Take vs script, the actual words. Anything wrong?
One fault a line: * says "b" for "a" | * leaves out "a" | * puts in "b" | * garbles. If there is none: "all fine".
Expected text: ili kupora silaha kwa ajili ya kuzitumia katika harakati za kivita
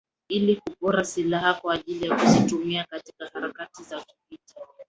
all fine